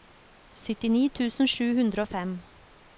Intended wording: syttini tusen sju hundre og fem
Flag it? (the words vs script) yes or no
no